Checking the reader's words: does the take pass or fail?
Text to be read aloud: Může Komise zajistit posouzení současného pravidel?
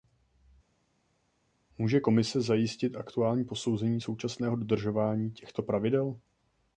fail